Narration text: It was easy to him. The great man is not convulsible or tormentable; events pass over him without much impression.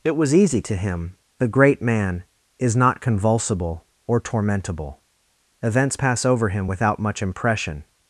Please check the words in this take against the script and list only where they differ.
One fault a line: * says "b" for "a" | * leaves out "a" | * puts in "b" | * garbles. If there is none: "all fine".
all fine